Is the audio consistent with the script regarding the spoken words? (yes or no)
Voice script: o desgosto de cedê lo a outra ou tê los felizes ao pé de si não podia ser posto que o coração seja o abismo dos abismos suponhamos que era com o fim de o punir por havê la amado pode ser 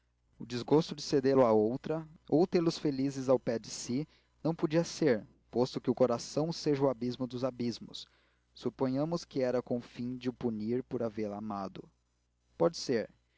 yes